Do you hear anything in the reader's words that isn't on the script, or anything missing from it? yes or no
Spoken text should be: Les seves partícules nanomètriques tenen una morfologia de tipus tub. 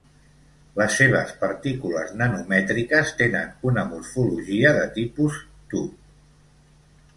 no